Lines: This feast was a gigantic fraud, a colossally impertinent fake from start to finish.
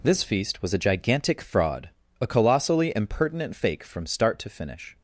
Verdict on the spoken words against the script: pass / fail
pass